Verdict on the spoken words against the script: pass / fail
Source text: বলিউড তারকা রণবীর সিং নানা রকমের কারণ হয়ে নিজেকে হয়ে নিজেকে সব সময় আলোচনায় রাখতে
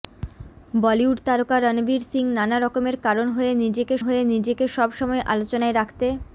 pass